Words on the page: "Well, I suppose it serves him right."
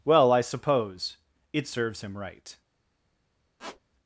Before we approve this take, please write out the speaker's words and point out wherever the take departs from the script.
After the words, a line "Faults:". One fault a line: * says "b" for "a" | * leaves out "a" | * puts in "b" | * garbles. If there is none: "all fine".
"Well, I suppose it serves him right."
Faults:
all fine